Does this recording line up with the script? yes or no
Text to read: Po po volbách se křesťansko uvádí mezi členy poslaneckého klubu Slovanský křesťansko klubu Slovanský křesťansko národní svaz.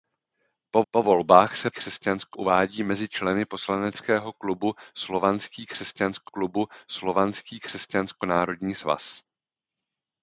yes